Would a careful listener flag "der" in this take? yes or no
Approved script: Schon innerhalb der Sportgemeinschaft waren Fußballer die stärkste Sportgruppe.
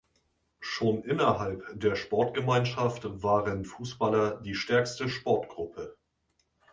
no